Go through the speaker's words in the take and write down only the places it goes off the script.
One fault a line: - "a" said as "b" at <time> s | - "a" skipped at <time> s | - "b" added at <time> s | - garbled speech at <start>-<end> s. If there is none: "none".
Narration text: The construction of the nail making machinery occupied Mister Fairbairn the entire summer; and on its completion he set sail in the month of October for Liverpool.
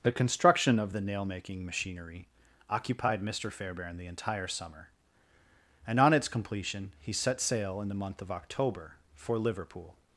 none